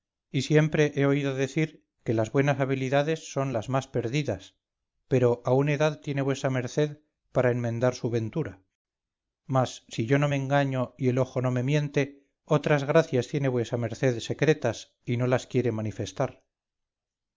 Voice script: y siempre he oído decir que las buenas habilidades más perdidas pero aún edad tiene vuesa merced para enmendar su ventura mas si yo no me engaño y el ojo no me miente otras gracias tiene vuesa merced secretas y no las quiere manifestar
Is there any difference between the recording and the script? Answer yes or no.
yes